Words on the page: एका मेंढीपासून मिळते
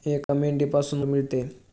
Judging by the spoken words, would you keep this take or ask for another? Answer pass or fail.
pass